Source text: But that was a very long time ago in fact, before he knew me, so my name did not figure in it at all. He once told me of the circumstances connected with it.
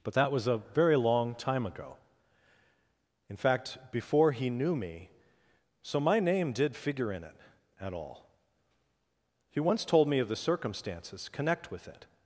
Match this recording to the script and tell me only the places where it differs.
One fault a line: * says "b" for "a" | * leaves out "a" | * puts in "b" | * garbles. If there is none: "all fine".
* leaves out "not"
* says "connect" for "connected"